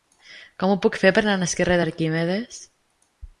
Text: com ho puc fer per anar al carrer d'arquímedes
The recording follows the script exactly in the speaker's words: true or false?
true